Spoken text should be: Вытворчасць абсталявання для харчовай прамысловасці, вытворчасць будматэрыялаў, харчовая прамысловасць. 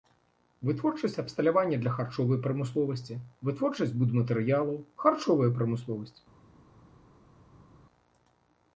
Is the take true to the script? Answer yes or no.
yes